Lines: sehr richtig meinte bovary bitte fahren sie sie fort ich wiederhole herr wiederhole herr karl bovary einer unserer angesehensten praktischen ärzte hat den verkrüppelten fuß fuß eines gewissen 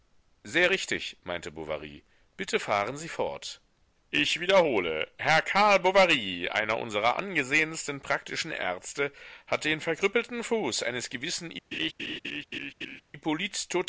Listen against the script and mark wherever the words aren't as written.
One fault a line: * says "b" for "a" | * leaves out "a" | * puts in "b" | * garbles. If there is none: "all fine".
* leaves out "sie"
* leaves out "wiederhole herr"
* leaves out "fuß"